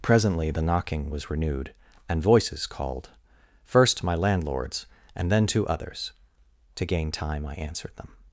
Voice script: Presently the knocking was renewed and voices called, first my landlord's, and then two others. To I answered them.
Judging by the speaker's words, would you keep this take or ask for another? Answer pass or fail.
fail